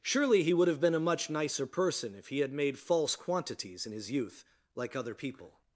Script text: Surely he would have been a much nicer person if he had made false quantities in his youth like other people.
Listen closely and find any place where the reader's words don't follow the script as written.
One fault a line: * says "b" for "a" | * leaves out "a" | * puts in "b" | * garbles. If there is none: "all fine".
all fine